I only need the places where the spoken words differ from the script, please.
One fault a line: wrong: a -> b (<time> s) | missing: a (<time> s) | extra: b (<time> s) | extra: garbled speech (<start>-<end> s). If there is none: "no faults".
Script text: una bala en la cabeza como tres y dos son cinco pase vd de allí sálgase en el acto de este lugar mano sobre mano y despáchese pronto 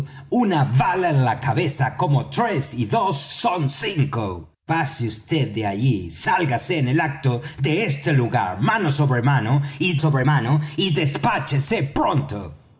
extra: sobre mano y (10.0 s)